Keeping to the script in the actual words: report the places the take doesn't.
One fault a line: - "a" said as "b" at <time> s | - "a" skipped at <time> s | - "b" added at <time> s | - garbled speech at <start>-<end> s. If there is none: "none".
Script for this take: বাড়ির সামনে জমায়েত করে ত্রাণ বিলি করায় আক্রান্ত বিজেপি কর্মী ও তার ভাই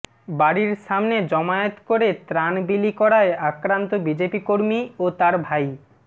none